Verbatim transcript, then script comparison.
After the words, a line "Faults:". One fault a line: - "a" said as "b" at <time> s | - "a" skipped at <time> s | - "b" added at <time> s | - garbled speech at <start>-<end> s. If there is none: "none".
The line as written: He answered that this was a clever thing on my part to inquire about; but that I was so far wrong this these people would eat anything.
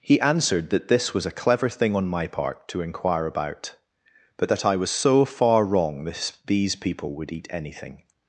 He answered that this was a clever thing on my part to inquire about; but that I was so far wrong this these people would eat anything.
Faults:
none